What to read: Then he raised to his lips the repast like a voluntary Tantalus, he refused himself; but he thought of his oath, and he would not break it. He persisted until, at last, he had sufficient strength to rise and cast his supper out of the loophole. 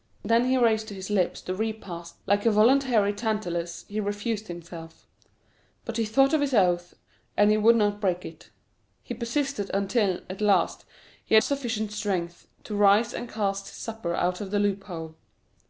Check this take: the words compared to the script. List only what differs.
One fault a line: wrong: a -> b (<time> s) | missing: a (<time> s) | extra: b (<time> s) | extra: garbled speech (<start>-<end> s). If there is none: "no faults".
no faults